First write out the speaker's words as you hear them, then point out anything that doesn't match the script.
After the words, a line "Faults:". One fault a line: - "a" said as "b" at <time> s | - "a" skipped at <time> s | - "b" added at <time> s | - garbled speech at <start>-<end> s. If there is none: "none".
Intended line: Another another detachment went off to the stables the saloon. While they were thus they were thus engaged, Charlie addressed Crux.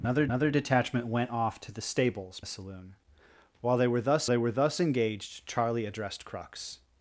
Another another detachment went off to the stables the saloon. While they were thus they were thus engaged, Charlie addressed Crux.
Faults:
none